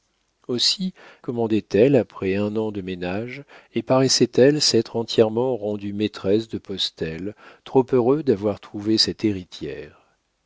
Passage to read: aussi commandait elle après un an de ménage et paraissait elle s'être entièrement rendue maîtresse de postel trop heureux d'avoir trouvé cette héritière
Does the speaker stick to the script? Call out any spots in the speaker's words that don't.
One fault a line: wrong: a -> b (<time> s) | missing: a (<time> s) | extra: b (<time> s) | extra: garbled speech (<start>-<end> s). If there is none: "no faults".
no faults